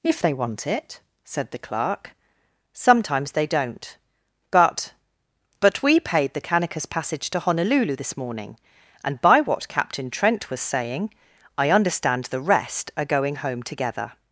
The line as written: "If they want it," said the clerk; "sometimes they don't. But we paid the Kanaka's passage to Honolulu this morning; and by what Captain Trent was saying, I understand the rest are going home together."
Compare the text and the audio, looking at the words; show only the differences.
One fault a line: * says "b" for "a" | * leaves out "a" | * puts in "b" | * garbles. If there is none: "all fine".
* puts in "But"